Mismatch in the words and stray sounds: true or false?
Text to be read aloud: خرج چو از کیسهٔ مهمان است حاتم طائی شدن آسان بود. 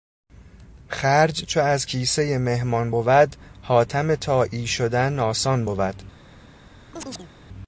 true